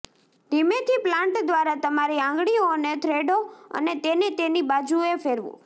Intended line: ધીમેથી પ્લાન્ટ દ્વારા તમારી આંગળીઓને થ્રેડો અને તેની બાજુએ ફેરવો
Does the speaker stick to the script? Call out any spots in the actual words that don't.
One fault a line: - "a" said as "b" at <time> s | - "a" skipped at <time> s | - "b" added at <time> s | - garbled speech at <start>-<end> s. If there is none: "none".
- "તેને" added at 4.0 s